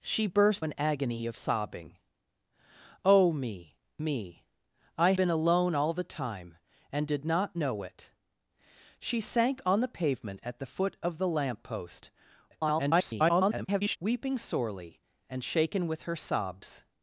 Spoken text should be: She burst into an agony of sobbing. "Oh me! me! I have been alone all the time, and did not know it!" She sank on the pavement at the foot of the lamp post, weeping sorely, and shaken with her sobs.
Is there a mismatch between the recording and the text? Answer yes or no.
yes